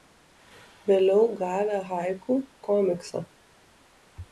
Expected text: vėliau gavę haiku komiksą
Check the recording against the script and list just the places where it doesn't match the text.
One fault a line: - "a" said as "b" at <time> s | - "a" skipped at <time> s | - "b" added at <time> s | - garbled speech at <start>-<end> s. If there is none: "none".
none